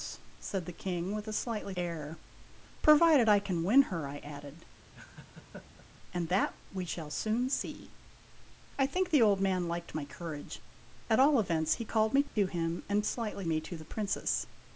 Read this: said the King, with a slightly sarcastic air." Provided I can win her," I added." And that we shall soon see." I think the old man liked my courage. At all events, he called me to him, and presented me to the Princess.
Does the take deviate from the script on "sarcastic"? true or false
true